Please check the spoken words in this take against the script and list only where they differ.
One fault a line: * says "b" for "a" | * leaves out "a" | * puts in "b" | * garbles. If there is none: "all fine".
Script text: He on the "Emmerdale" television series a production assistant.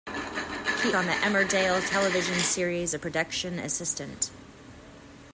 all fine